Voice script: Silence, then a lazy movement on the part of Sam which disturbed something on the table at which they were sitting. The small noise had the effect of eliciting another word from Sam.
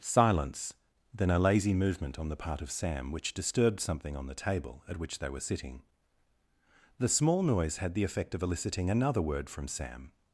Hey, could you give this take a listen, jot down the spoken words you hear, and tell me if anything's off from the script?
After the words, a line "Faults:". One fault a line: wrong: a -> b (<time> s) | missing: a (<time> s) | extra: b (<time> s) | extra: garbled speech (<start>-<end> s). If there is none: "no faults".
Silence, then a lazy movement on the part of Sam which disturbed something on the table at which they were sitting. The small noise had the effect of eliciting another word from Sam.
Faults:
no faults